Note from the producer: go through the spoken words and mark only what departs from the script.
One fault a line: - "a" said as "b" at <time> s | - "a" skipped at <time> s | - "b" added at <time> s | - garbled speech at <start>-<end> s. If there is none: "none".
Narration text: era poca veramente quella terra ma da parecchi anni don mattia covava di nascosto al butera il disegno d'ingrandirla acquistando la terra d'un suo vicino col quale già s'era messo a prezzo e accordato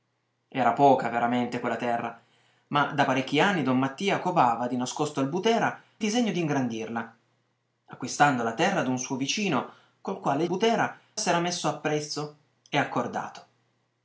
- "il" skipped at 5.8 s
- "già" said as "butera" at 10.5 s